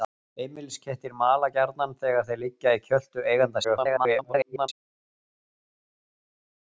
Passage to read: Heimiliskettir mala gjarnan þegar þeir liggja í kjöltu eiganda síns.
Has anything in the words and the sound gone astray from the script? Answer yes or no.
yes